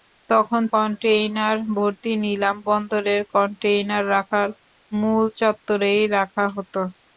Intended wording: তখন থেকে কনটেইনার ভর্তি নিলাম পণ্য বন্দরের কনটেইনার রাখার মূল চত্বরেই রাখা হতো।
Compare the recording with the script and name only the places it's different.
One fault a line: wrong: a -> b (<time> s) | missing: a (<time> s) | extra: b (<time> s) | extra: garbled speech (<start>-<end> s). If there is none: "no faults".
missing: থেকে (0.6 s)
missing: পণ্য (2.6 s)